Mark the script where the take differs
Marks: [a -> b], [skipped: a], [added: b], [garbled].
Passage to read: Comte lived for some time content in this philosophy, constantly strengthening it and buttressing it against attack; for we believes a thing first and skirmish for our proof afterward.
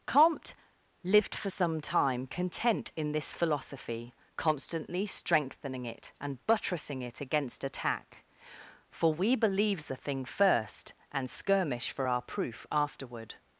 Comte lived for some time content in this philosophy, constantly strengthening it and buttressing it against attack; for we believes a thing first and skirmish for our proof afterward.